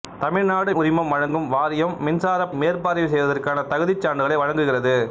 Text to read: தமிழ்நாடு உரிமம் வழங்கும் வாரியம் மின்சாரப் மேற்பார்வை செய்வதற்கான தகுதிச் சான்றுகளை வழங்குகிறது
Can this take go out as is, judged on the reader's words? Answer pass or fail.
pass